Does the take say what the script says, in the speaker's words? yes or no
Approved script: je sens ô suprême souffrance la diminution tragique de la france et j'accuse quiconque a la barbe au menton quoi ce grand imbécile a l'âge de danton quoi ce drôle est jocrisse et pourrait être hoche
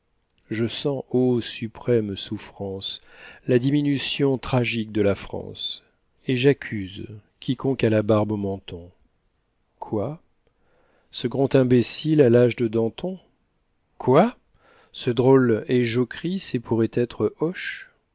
yes